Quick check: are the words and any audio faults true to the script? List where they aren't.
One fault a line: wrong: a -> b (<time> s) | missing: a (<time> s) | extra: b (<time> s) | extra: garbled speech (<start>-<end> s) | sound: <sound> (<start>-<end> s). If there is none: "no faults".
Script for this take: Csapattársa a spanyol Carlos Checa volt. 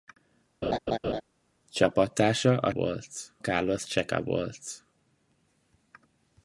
sound: laugh (0.6-1.2 s)
wrong: spanyol -> volt (2.7 s)